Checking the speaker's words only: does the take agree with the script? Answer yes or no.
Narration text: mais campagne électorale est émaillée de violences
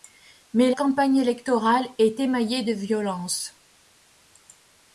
yes